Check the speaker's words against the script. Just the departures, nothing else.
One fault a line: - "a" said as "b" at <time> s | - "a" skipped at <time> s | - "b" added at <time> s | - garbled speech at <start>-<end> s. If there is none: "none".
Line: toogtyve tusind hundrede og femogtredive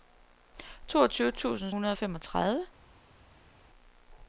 none